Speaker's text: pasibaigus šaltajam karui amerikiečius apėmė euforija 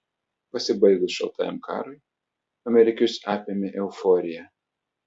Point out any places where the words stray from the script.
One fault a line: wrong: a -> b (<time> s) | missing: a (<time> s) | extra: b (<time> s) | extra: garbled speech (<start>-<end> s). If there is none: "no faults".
no faults